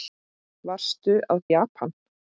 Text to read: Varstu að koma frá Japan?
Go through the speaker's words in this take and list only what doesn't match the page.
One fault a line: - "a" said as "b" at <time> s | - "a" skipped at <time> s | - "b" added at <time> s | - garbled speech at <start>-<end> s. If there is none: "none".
- "koma frá" skipped at 1.4 s